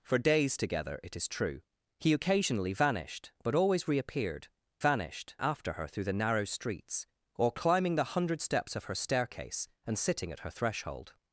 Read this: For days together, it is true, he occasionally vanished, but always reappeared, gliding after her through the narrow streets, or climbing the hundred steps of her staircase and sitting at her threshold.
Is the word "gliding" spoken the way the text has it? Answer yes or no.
no